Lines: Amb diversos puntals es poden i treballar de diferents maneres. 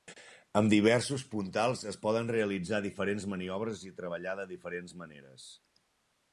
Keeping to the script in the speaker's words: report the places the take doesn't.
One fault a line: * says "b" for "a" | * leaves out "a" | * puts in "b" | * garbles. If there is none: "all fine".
* puts in "realitzar diferents maniobres"